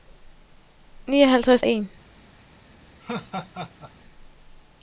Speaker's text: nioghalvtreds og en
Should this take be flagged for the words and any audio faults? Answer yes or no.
yes